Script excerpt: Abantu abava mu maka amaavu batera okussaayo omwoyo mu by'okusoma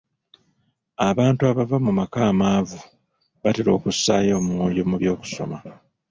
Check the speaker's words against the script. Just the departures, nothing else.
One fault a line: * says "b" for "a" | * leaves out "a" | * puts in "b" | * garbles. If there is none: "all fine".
all fine